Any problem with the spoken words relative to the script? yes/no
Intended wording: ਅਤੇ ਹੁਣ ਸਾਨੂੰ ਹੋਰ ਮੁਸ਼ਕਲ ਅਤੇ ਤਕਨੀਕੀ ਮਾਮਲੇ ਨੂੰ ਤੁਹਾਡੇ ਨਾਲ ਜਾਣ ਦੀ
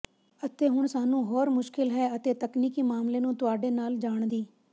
yes